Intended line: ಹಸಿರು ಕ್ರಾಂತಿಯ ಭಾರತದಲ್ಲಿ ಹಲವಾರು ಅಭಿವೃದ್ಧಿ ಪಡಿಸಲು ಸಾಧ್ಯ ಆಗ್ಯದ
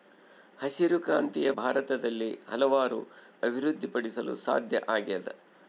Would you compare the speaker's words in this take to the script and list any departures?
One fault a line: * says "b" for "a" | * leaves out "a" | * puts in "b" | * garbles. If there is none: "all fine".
all fine